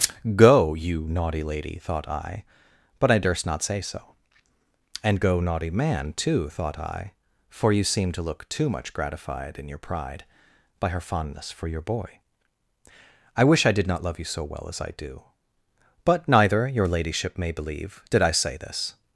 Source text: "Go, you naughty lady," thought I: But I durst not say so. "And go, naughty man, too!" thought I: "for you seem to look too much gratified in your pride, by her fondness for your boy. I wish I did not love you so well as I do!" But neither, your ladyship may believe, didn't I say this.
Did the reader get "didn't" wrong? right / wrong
wrong